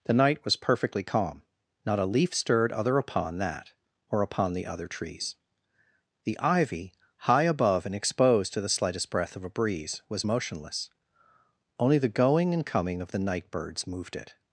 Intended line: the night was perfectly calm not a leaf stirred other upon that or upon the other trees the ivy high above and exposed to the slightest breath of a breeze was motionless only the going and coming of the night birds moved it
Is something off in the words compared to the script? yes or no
no